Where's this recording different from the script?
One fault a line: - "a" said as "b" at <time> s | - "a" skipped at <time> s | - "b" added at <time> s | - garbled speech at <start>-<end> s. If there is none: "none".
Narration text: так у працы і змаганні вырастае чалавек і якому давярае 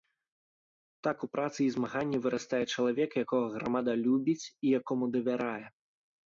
- "якога грамада любіць" added at 3.2 s